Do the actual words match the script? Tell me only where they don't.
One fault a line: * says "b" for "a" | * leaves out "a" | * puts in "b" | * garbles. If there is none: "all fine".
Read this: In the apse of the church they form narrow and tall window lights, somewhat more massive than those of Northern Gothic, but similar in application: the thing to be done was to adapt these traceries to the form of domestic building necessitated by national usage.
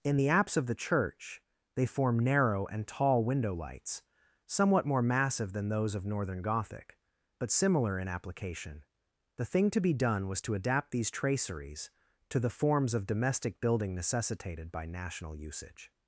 * says "forms" for "form"